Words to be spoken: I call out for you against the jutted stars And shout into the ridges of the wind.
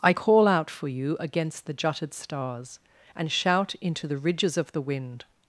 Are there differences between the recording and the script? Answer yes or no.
no